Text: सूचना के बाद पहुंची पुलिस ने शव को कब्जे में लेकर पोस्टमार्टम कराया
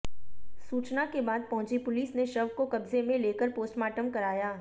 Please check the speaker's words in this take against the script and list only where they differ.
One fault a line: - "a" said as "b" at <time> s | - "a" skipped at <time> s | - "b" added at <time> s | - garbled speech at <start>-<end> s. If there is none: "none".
none